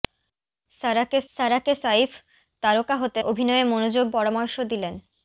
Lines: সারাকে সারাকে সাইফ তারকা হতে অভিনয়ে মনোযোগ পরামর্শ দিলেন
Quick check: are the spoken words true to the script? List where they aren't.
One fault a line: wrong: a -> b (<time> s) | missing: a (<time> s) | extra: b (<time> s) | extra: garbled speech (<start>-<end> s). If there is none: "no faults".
no faults